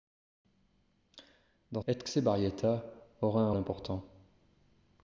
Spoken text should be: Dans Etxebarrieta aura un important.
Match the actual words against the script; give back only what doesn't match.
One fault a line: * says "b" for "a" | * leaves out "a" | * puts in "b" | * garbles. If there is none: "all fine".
all fine